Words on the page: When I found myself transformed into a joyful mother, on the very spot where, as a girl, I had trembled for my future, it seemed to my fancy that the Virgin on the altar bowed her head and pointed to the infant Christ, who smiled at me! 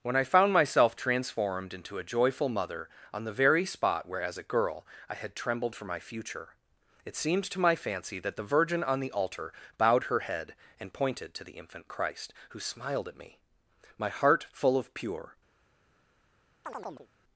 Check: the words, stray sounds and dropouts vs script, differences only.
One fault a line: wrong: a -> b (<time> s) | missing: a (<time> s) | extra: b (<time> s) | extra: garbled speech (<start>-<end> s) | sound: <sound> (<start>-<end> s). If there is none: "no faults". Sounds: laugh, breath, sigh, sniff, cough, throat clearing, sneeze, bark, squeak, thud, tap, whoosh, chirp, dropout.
extra: My heart full of pure (14.0 s)
sound: chirp (16.6-17.1 s)